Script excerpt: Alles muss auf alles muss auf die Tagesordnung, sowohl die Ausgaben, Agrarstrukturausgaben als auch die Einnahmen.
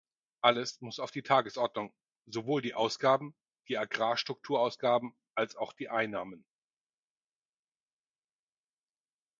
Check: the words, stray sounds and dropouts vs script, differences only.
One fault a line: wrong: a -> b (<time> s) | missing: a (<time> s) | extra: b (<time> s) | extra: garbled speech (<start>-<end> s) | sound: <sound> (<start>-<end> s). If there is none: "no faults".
missing: alles muss auf (1.1 s)
extra: die (3.7 s)